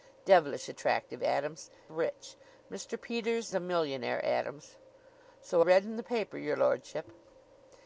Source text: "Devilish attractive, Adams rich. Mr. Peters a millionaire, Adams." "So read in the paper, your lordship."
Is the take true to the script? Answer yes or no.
yes